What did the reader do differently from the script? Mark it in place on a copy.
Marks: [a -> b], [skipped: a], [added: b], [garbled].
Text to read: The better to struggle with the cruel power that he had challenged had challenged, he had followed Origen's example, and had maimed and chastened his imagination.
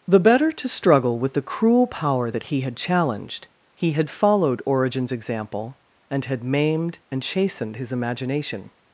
The better to struggle with the cruel power that he had challenged [skipped: had challenged,] he had followed Origen's example, and had maimed and chastened his imagination.